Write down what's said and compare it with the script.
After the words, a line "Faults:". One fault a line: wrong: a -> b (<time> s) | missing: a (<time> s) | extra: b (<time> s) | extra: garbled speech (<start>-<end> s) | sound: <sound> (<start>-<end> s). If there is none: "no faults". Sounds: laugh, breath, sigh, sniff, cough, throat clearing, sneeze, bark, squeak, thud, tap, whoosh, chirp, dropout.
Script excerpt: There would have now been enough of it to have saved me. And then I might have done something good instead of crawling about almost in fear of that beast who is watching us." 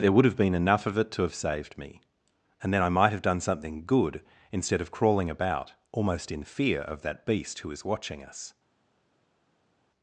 There would have been enough of it to have saved me. And then I might have done something good instead of crawling about almost in fear of that beast who is watching us."
Faults:
missing: now (0.4 s)